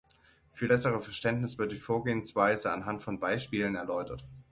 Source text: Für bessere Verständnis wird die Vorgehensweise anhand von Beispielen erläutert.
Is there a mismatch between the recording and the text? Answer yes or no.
no